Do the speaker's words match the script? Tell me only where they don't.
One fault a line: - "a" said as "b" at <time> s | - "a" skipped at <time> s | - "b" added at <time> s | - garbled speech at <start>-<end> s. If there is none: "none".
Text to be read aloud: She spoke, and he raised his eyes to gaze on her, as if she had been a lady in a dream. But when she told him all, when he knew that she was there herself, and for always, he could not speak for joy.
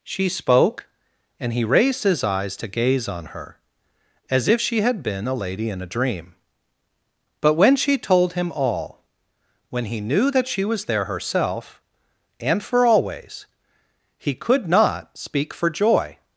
none